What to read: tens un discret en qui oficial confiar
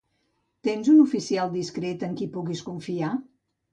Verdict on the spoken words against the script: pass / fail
fail